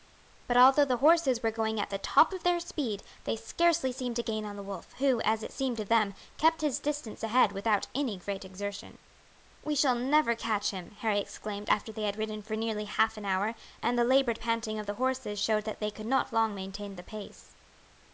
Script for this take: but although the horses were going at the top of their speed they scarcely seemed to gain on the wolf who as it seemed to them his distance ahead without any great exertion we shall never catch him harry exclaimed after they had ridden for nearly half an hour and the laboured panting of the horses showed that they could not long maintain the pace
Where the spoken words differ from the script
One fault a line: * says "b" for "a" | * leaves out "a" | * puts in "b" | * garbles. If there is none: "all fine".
* puts in "kept"